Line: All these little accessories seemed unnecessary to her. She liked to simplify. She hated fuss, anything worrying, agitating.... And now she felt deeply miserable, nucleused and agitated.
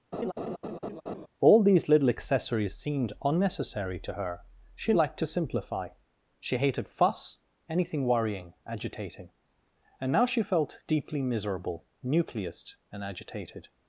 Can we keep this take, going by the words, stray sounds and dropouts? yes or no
no